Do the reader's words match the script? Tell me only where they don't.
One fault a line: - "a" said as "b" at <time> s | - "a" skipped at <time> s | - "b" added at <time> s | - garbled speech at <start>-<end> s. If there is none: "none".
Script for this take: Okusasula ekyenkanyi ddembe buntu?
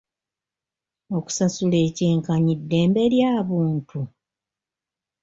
- "lya" added at 3.1 s